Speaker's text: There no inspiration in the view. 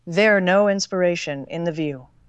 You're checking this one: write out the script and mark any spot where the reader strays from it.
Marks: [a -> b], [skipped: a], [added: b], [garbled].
There no inspiration in the view.